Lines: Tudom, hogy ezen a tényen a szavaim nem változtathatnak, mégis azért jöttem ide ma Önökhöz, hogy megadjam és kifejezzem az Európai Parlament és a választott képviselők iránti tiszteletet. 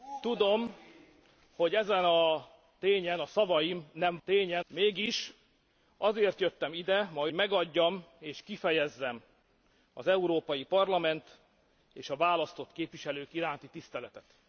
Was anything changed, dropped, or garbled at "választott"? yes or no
no